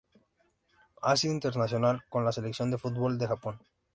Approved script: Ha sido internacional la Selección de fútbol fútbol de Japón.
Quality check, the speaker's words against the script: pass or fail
fail